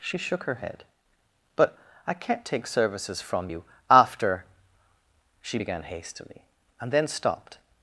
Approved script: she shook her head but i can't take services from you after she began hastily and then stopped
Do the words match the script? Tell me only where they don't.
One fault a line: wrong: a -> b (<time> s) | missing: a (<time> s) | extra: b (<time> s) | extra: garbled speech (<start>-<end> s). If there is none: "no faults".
no faults